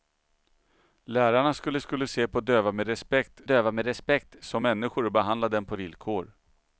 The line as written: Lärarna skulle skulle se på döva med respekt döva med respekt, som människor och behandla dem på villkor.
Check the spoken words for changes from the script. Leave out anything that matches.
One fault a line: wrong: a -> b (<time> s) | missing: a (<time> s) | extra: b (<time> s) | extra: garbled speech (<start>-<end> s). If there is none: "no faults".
no faults